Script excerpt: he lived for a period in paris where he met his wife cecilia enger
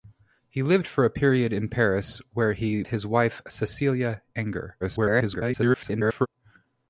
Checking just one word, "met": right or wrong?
wrong